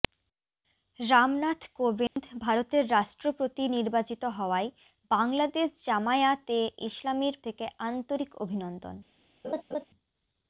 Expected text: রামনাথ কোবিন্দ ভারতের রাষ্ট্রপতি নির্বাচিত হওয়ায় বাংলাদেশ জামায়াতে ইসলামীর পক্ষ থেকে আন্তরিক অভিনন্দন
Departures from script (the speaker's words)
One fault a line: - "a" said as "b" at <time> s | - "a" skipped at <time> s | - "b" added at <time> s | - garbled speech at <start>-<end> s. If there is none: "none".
- "পক্ষ" skipped at 7.3 s